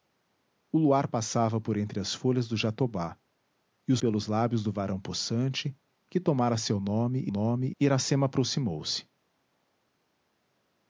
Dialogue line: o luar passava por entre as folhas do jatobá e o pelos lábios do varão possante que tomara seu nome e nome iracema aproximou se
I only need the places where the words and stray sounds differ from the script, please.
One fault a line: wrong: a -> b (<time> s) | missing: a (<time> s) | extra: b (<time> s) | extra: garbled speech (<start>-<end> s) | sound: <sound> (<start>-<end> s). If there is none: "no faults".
no faults